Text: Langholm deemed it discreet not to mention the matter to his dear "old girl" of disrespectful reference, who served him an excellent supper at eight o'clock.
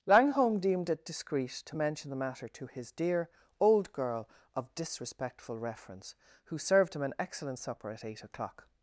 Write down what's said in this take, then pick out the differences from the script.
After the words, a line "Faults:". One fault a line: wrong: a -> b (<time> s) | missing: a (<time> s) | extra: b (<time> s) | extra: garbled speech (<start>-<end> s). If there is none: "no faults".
Langholm deemed it discreet to mention the matter to his dear "old girl" of disrespectful reference, who served him an excellent supper at eight o'clock.
Faults:
missing: not (1.5 s)